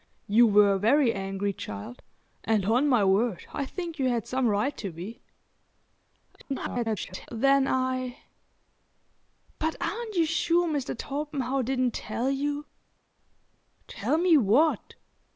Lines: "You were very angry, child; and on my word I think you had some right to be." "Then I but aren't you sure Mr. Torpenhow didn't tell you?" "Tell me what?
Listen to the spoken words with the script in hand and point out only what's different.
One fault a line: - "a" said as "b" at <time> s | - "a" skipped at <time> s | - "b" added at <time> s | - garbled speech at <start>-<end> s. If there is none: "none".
- garbled speech at 6.4-7.3 s